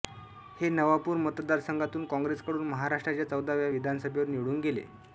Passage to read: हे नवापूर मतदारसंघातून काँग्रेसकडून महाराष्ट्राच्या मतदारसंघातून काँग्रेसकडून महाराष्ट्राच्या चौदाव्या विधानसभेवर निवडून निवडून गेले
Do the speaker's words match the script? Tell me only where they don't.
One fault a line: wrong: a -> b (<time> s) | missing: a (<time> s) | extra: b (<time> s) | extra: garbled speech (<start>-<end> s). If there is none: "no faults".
missing: मतदारसंघातून काँग्रेसकडून महाराष्ट्राच्या (3.3 s)
missing: निवडून (4.6 s)